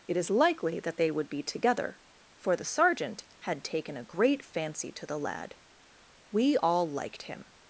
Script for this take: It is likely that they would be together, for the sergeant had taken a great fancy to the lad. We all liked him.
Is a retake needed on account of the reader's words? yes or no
no